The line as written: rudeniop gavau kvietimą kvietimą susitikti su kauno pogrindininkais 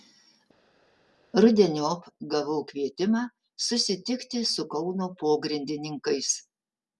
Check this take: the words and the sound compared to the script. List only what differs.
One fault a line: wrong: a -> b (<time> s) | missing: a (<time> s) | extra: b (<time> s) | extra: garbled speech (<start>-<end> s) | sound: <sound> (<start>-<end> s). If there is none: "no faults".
missing: kvietimą (3.2 s)